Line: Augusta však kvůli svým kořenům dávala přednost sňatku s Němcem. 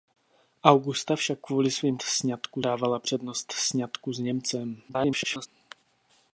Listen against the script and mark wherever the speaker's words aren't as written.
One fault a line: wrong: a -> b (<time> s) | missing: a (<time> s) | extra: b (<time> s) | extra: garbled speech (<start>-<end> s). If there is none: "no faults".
wrong: kořenům -> sňatku (2.0 s)
extra: garbled speech (4.9-5.5 s)